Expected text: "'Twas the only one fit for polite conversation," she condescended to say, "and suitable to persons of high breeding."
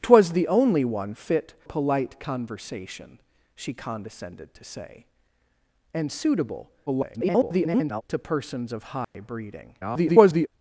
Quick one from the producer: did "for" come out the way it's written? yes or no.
no